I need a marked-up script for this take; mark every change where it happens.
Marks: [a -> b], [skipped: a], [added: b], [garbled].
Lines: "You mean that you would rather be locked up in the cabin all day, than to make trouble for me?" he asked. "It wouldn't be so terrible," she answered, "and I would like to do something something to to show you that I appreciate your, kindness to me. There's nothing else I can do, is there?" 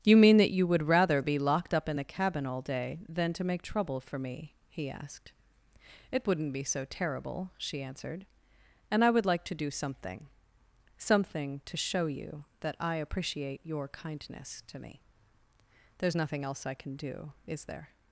"You mean that you would rather be locked up in the cabin all day, than to make trouble for me?" he asked. "It wouldn't be so terrible," she answered, "and I would like to do something something to [skipped: to] show you that I appreciate your, kindness to me. There's nothing else I can do, is there?"